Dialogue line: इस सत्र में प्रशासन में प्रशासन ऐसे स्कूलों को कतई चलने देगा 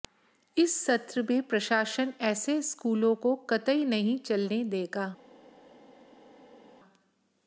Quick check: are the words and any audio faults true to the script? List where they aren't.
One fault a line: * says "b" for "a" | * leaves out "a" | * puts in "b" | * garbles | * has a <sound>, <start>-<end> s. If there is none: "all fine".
* leaves out "में प्रशासन"
* puts in "नहीं"